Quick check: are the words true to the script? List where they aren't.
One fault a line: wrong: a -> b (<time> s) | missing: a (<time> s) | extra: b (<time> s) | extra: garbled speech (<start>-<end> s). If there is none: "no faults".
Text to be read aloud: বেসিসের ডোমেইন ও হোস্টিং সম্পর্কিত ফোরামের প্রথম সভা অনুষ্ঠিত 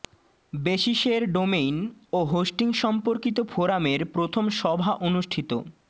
no faults